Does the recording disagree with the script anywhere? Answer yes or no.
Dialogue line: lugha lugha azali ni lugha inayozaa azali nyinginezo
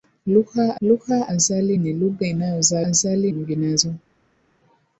no